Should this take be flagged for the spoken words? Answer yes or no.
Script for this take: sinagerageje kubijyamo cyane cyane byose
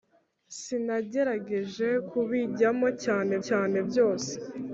no